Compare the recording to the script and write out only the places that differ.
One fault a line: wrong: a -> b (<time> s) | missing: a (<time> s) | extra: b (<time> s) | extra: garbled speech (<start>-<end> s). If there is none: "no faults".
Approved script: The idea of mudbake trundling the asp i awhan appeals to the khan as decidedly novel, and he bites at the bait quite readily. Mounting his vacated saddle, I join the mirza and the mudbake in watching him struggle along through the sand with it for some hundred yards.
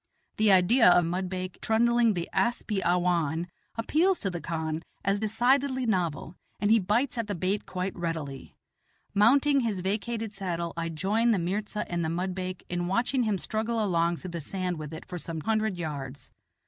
no faults